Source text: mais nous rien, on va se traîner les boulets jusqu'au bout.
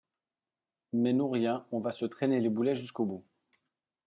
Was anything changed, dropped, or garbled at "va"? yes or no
no